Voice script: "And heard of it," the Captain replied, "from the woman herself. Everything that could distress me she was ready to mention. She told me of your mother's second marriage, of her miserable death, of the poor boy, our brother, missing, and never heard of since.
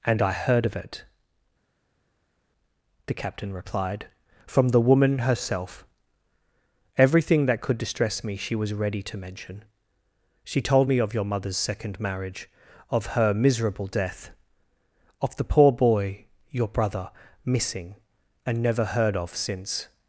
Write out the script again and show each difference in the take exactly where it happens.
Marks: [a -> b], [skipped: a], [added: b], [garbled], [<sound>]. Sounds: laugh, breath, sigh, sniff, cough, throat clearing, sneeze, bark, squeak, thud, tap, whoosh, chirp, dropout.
"And [added: I] heard of it," the Captain replied, "from the woman herself. Everything that could distress me she was ready to mention. She told me of your mother's second marriage, of her miserable death, of the poor boy, [our -> your] brother, missing, and never heard of since.